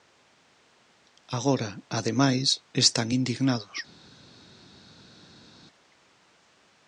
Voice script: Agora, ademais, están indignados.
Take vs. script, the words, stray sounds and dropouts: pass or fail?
pass